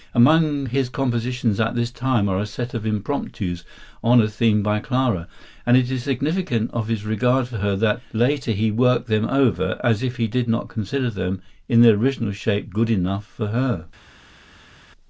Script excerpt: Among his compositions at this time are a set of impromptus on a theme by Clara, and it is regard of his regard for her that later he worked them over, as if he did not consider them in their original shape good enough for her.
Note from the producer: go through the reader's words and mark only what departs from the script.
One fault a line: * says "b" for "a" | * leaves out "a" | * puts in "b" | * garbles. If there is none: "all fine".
* says "significant" for "regard"